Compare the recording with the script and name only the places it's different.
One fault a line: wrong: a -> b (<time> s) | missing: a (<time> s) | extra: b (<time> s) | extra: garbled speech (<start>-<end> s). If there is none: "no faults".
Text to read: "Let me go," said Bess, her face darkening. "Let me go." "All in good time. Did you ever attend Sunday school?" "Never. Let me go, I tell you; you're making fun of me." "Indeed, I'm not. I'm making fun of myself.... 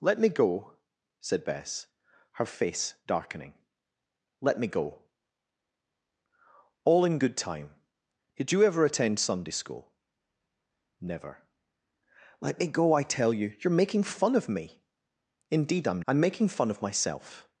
missing: not (16.0 s)